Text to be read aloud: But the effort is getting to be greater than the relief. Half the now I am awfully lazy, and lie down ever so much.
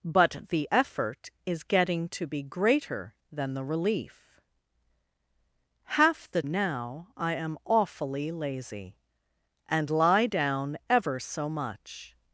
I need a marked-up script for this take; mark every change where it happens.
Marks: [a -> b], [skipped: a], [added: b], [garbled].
But the effort is getting to be greater than the relief. Half the now I am awfully lazy, and lie down ever so much.